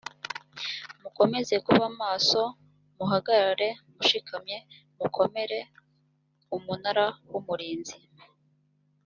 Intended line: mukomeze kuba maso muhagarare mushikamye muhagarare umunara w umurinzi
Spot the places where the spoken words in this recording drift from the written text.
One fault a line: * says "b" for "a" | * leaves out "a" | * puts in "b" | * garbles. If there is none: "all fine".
* says "mukomere" for "muhagarare"